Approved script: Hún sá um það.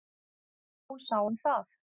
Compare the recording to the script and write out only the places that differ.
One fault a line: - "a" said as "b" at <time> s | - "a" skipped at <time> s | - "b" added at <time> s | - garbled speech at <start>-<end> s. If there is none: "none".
none